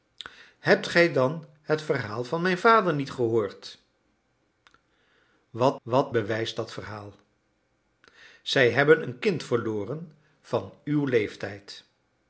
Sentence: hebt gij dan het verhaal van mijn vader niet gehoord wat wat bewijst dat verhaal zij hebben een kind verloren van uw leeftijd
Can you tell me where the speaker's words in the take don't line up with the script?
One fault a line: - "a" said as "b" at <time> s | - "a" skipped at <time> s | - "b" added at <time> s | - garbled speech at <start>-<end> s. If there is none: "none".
none